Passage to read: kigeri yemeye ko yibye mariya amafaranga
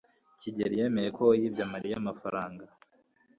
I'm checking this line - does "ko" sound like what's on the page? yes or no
yes